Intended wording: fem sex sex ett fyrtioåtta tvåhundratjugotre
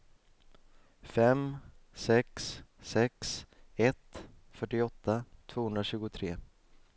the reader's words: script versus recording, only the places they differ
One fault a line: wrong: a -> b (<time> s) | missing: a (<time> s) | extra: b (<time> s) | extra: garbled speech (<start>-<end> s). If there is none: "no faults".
no faults